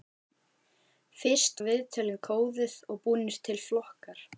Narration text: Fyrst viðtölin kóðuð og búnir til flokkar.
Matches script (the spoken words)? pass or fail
pass